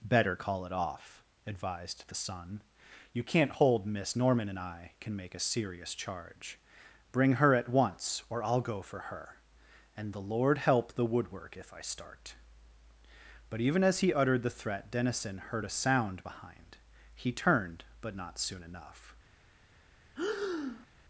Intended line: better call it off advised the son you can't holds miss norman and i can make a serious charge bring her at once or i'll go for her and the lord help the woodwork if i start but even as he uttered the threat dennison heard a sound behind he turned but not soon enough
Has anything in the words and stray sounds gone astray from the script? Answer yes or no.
yes